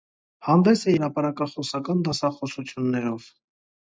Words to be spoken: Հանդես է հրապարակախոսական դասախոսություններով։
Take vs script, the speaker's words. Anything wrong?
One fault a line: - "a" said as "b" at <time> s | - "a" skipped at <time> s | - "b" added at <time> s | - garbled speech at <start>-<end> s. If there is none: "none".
none